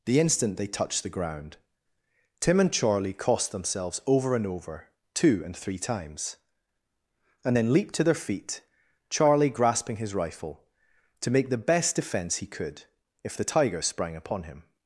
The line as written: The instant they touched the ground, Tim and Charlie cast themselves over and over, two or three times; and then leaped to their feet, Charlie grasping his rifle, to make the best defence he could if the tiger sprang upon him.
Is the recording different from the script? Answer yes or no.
yes